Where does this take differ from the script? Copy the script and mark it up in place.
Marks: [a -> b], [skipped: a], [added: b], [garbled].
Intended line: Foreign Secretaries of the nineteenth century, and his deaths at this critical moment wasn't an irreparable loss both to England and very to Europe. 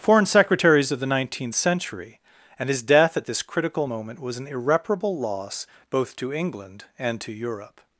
Foreign Secretaries of the nineteenth century, and his [deaths -> death] at this critical moment [wasn't -> was] an irreparable loss both to England and [skipped: very] to Europe.